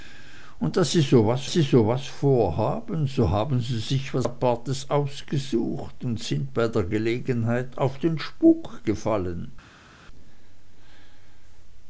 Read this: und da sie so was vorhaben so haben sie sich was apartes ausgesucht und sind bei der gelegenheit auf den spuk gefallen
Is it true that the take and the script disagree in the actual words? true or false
true